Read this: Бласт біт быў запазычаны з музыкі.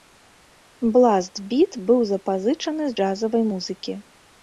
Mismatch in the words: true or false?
true